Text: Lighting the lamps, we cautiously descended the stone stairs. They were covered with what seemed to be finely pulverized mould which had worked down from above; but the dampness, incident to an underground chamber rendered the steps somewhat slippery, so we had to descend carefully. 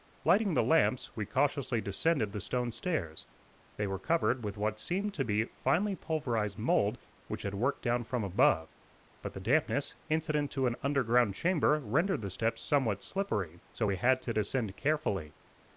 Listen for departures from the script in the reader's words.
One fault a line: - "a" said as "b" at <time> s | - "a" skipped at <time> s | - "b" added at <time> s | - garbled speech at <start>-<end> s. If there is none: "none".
none